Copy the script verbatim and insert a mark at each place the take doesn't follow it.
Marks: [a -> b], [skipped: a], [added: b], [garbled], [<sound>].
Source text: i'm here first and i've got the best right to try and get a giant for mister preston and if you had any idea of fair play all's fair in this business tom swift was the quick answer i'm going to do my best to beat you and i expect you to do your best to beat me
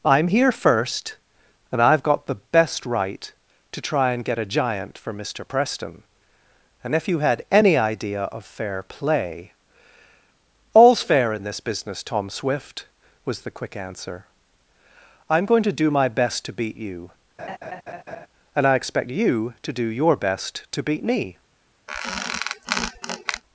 i'm here first and i've got the best right to try and get a giant for mister preston and if you had any idea of fair play all's fair in this business tom swift was the quick answer i'm going to do my best to beat you [laugh] and i expect you to do your best to beat me [squeak]